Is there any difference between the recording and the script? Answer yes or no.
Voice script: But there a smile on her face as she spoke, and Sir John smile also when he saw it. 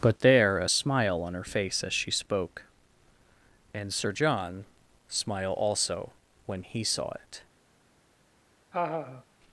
no